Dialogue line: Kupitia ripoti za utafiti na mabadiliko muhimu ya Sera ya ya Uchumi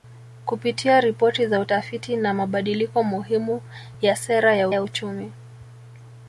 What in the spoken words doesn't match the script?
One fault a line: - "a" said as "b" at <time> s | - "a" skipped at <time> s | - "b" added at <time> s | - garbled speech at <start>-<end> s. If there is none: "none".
none